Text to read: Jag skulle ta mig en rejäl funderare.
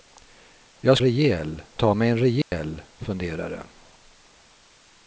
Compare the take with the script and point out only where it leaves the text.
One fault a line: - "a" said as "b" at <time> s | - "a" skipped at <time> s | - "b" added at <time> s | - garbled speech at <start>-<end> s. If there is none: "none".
- "skulle" said as "rejäl" at 1.0 s